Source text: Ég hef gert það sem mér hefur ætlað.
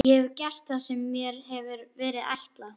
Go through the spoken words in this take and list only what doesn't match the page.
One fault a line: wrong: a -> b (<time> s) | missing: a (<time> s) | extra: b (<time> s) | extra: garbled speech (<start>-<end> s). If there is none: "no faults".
extra: verið (2.0 s)